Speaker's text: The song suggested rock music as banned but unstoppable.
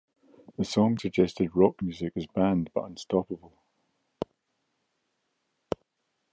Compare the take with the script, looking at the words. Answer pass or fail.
pass